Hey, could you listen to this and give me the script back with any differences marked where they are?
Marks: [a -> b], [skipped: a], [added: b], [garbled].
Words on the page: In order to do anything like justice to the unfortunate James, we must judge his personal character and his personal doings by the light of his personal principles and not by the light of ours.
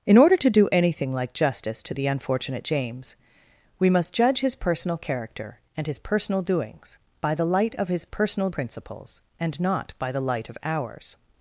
In order to do anything like justice to the unfortunate James, we must judge his personal character and his personal doings by the light of his personal principles and not by the light of ours.